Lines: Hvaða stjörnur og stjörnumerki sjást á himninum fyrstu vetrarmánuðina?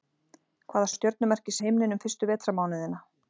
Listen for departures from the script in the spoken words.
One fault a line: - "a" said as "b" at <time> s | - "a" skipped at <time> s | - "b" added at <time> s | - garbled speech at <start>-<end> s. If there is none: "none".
- "stjörnur" skipped at 0.9 s
- "sjást" skipped at 1.6 s